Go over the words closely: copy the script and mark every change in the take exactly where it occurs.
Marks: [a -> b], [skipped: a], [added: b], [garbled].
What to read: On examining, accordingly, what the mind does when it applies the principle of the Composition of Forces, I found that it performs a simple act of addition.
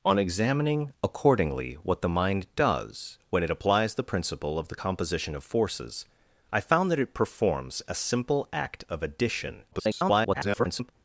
On examining, accordingly, what the mind does when it applies the principle of the Composition of Forces, I found that it performs a simple act of addition. [garbled]